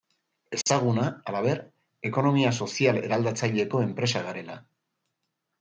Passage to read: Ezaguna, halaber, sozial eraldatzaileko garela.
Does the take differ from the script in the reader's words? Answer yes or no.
yes